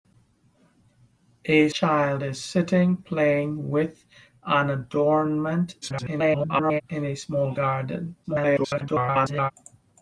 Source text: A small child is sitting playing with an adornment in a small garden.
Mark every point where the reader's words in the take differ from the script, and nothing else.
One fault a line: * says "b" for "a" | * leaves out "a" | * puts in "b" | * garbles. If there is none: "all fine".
* leaves out "small"
* garbles
* garbles